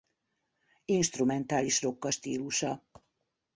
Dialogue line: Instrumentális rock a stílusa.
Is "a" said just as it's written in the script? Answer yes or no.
yes